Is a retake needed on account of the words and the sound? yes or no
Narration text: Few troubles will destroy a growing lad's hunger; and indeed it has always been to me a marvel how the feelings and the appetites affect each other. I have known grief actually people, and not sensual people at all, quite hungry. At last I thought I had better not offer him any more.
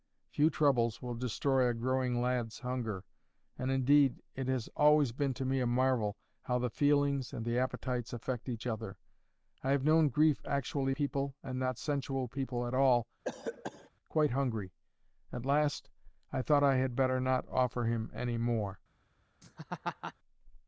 yes